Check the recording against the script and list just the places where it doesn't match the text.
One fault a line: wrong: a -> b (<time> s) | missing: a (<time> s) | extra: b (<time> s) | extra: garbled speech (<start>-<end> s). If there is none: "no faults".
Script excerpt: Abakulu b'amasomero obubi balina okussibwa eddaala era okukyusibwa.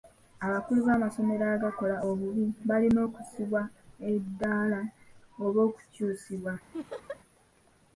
extra: agakola (1.6 s)
wrong: era -> oba (5.4 s)